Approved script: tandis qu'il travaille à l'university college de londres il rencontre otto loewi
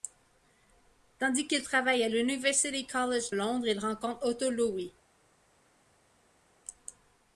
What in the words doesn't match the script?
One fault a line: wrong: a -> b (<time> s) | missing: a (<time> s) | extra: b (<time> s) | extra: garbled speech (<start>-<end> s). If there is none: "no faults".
missing: de (3.3 s)